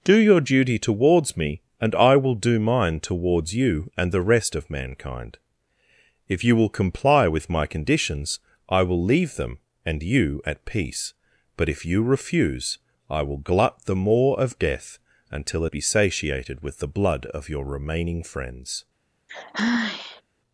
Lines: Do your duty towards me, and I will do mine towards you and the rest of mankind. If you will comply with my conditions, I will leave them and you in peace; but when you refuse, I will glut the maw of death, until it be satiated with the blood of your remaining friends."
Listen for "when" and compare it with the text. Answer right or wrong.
wrong